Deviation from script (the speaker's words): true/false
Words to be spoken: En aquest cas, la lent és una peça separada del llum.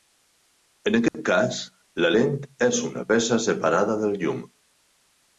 false